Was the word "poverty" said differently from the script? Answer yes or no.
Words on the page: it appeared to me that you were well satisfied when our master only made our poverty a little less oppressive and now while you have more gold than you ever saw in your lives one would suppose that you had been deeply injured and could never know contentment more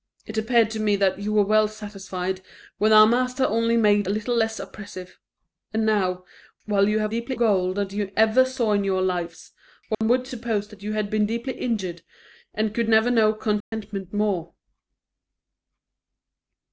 yes